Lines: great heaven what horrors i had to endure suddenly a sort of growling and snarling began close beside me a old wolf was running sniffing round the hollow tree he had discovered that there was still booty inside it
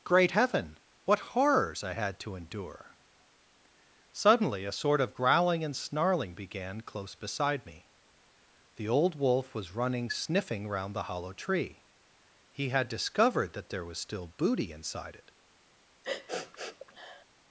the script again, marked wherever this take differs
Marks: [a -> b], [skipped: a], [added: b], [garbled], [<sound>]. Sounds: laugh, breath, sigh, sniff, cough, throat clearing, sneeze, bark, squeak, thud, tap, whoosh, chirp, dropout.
great heaven what horrors i had to endure suddenly a sort of growling and snarling began close beside me [a -> the] old wolf was running sniffing round the hollow tree he had discovered that there was still booty inside it [sniff]